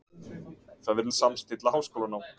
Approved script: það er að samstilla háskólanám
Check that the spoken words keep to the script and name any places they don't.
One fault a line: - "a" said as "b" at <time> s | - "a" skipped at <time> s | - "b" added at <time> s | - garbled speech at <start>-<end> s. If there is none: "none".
none